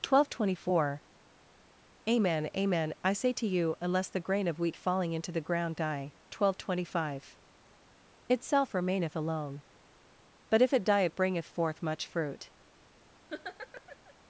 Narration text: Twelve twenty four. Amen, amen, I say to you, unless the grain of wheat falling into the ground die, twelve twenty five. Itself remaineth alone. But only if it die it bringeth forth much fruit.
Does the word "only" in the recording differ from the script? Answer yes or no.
yes